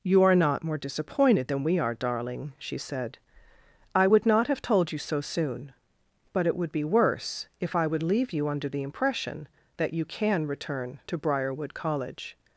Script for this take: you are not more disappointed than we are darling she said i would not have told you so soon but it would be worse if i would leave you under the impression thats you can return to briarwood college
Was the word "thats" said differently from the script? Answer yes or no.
yes